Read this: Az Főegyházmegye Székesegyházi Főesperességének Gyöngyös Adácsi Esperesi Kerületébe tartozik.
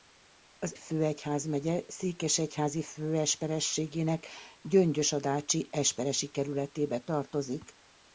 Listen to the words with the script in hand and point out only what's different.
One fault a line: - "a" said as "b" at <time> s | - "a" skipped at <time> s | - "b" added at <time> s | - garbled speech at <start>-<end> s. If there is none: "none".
none